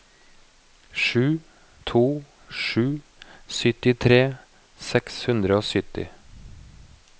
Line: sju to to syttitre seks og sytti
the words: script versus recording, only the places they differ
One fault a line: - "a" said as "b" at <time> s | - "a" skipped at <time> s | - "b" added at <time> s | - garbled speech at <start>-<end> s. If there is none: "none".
- "sju" added at 2.6 s
- "hundre" added at 5.3 s